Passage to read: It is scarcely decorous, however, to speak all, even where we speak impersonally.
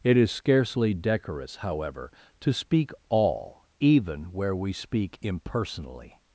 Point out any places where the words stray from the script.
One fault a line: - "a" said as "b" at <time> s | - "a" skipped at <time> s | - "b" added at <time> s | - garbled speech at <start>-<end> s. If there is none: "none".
none